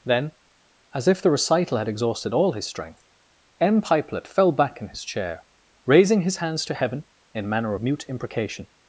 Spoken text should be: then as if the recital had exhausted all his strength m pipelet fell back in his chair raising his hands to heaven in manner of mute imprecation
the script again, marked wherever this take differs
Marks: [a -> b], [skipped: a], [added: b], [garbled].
then as if the recital had exhausted all his strength m pipelet fell back in his chair raising his hands to heaven in manner of mute imprecation